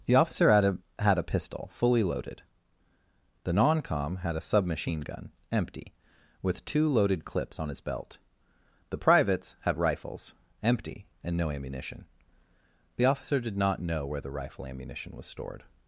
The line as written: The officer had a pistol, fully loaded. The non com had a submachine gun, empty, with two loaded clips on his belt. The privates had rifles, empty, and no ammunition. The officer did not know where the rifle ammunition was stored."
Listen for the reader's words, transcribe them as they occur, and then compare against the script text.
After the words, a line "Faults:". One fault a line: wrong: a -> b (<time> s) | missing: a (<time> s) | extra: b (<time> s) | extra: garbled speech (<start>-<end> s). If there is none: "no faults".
The officer had a had a pistol, fully loaded. The non com had a submachine gun, empty, with two loaded clips on his belt. The privates had rifles, empty, and no ammunition. The officer did not know where the rifle ammunition was stored."
Faults:
extra: had a (1.0 s)